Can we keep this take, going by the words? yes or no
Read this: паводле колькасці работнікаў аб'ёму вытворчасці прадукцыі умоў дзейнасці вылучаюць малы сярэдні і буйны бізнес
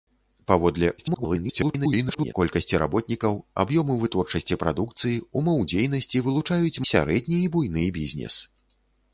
no